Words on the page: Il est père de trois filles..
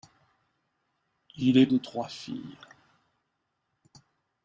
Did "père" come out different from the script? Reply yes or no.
yes